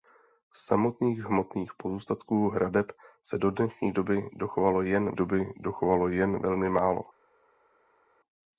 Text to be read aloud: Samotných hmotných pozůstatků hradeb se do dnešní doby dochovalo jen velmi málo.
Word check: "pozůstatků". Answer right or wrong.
right